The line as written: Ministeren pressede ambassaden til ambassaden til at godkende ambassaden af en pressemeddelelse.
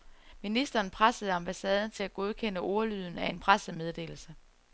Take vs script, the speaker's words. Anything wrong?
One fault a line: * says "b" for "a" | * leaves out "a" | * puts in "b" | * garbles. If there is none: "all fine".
* leaves out "ambassaden til"
* says "ordlyden" for "ambassaden"